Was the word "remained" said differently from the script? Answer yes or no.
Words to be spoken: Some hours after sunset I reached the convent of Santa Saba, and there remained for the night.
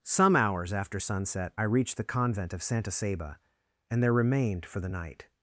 no